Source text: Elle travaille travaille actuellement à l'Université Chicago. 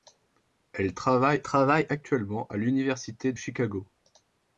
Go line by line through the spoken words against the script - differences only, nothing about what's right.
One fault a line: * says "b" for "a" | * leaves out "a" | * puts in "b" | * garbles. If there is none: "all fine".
all fine